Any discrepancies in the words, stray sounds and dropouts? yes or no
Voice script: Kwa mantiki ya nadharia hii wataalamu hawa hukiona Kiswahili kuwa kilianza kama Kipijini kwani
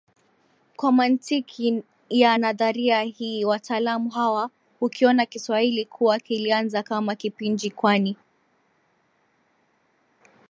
no